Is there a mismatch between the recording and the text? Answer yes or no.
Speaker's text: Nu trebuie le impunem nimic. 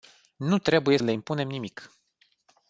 no